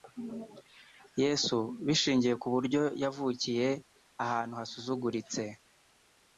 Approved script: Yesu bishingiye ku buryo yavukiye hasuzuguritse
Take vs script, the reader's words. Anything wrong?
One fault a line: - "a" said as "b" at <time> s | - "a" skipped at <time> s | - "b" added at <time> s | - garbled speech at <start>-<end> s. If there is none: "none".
- "ahantu" added at 4.2 s